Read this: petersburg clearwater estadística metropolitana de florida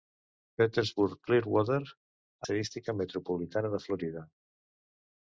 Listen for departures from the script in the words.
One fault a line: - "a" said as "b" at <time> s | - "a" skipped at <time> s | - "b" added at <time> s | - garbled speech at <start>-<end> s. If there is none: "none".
none